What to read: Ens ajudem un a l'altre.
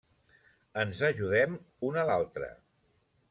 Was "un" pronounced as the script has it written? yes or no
yes